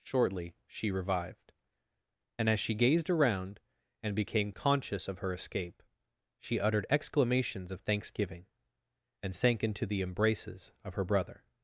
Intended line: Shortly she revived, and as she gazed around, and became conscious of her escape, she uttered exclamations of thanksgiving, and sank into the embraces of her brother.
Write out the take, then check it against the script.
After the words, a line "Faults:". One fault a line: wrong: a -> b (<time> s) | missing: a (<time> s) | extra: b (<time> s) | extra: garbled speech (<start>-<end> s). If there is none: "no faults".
Shortly she revived, and as she gazed around, and became conscious of her escape, she uttered exclamations of thanksgiving, and sank into the embraces of her brother.
Faults:
no faults